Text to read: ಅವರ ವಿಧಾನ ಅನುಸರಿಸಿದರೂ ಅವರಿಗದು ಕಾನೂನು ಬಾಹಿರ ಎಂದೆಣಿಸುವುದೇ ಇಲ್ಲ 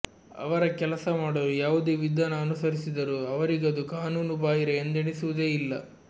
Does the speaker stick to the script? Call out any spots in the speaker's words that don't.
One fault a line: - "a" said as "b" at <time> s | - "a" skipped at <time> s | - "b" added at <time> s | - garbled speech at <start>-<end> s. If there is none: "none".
- "ಕೆಲಸ ಮಾಡಲು ಯಾವುದೇ" added at 0.8 s